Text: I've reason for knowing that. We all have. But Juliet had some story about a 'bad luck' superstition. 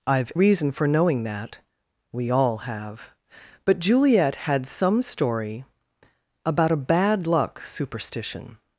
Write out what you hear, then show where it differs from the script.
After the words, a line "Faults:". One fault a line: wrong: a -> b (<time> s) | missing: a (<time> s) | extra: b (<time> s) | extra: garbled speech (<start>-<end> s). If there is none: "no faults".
I've reason for knowing that. We all have. But Juliet had some story about a 'bad luck' superstition.
Faults:
no faults